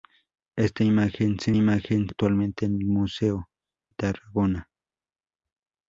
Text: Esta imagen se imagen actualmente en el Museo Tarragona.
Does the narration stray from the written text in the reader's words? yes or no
no